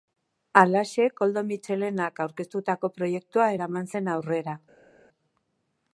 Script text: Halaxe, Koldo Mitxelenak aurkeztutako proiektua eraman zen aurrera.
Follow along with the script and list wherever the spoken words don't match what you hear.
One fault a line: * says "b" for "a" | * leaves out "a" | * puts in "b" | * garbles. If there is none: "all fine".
all fine